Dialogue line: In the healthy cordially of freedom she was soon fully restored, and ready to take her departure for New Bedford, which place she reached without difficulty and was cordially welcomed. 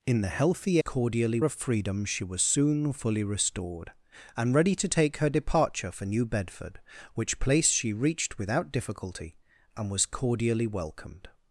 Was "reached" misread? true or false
false